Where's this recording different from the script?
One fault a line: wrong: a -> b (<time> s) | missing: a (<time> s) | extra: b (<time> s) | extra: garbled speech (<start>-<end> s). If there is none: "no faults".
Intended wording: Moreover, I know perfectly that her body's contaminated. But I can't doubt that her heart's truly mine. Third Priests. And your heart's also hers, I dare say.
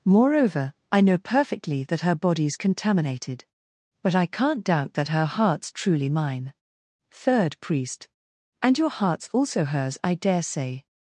wrong: Priests -> Priest (7.6 s)